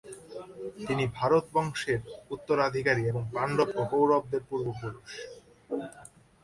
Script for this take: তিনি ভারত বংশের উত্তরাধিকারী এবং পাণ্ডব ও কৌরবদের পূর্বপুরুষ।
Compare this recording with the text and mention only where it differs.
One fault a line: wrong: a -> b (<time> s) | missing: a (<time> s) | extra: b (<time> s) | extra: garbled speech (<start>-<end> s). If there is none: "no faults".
no faults